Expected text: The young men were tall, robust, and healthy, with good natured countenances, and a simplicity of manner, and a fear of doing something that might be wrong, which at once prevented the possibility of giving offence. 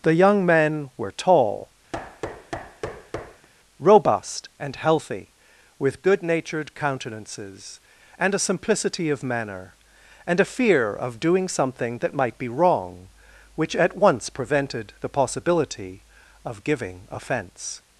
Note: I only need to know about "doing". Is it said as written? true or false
true